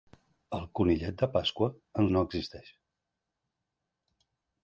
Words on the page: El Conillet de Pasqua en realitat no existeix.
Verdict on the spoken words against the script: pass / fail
fail